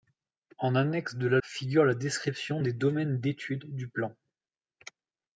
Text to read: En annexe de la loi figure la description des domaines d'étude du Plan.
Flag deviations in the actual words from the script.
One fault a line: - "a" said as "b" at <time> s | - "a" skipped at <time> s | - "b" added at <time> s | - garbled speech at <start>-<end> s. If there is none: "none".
- "loi" skipped at 1.4 s